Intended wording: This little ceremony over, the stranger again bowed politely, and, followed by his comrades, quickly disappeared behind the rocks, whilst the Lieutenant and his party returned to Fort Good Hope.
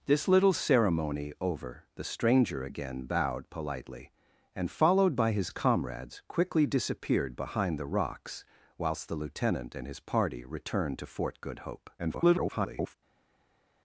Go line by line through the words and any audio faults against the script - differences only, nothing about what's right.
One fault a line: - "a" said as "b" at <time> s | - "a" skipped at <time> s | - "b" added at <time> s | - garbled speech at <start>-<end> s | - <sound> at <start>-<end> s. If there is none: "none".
- garbled speech at 12.0-13.0 s